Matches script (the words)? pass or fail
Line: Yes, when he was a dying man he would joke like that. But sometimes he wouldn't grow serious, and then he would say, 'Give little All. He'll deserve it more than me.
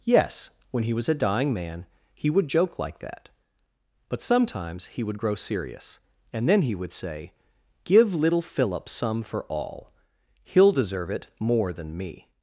fail